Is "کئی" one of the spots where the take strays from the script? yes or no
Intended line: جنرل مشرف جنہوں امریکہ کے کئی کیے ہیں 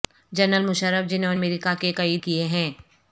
no